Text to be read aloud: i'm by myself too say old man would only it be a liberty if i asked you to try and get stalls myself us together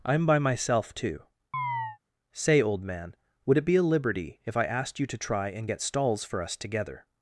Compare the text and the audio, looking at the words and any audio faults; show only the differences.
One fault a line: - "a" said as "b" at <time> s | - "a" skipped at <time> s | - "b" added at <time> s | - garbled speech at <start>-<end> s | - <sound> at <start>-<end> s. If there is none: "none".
- chirp at 1.5-2.0 s
- "only" skipped at 3.6 s
- "myself" said as "for" at 6.2 s